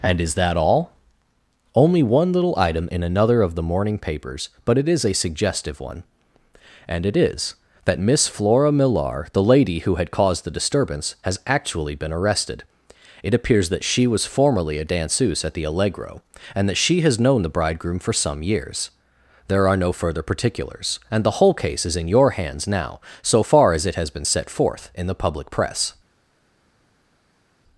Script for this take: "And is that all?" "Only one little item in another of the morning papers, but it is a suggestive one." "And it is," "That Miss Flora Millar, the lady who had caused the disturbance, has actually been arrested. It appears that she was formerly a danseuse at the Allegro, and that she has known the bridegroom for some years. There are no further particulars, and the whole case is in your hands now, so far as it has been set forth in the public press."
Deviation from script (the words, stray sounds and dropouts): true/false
false